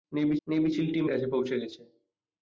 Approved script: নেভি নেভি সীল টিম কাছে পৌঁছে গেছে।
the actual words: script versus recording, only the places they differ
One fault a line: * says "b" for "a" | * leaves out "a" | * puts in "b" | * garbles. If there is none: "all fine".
all fine